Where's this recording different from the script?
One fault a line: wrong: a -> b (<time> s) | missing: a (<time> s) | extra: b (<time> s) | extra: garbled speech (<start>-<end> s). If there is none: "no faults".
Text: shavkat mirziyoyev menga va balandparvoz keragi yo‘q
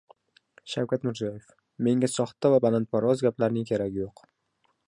extra: soxta (2.1 s)
extra: gaplarning (3.3 s)